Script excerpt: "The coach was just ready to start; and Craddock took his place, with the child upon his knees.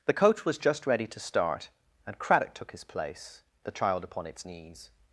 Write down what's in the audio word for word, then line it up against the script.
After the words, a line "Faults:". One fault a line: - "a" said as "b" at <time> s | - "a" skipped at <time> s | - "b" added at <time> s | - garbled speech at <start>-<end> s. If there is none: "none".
"The coach was just ready to start; and Craddock took his place, the child upon its knees.
Faults:
- "with" skipped at 3.4 s
- "his" said as "its" at 4.2 s